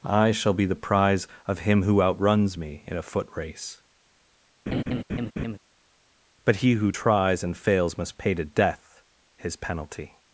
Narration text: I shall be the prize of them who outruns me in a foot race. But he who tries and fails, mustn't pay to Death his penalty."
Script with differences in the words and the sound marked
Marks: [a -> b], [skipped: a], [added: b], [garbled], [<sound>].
I shall be the prize of [them -> him] who outruns me in a foot race. [laugh] But he who tries and fails, [mustn't -> must] pay to Death his penalty."